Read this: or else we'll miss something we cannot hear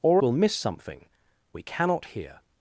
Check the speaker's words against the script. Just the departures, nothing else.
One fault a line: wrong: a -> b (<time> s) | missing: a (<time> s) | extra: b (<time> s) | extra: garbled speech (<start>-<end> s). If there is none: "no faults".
missing: else (0.2 s)